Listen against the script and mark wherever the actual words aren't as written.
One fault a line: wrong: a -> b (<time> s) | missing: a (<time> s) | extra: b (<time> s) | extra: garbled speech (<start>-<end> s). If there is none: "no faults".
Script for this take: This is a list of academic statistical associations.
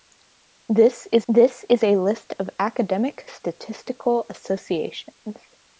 extra: this is (1.3 s)